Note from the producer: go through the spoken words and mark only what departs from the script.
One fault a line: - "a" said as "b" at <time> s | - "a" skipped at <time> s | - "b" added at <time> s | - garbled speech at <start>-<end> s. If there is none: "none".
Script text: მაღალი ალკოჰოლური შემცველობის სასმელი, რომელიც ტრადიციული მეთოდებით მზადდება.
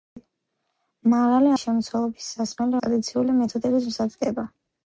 - "ალკოჰოლური" skipped at 1.5 s
- "რომელიც" skipped at 2.7 s